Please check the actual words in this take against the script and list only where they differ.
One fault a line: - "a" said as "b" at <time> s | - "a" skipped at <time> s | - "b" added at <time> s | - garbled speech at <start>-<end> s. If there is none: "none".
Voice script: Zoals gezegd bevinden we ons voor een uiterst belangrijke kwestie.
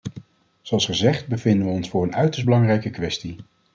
none